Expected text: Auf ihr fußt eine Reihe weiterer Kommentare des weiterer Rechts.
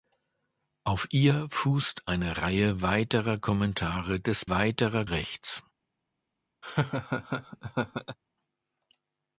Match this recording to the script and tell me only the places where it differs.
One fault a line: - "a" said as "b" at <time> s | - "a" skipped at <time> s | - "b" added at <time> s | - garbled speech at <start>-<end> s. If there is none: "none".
none